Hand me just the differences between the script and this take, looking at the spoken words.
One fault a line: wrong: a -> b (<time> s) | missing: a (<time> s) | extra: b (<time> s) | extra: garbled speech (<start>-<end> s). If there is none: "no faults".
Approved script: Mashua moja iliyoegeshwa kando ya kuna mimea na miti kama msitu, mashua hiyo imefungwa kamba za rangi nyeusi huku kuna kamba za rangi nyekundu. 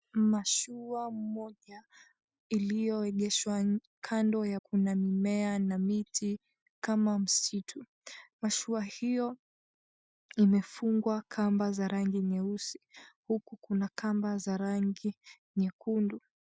no faults